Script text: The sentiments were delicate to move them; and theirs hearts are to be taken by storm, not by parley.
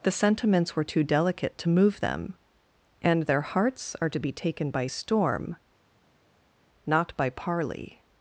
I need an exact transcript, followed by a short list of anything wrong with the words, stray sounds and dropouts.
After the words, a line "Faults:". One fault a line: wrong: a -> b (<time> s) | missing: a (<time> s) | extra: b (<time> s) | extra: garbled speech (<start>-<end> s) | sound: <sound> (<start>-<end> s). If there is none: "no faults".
The sentiments were too delicate to move them; and their hearts are to be taken by storm, not by parley.
Faults:
extra: too (0.8 s)
wrong: theirs -> their (3.2 s)